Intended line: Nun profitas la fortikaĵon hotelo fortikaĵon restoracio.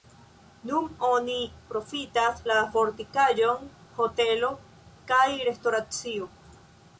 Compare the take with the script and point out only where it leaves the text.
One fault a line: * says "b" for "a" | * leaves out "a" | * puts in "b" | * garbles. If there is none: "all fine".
* puts in "oni"
* says "kaj" for "fortikaĵon"